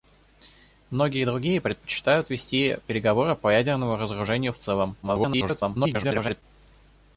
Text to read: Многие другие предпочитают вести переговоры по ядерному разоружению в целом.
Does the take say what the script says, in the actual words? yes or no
no